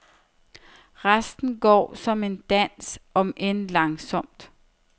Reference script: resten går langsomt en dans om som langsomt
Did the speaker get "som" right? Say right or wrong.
wrong